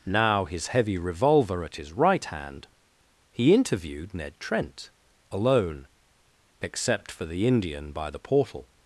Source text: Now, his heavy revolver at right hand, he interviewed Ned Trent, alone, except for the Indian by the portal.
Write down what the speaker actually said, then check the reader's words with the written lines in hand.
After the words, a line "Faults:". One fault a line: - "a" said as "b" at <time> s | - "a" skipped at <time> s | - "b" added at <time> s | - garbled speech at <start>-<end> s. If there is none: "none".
Now, his heavy revolver at his right hand, he interviewed Ned Trent, alone, except for the Indian by the portal.
Faults:
- "his" added at 1.7 s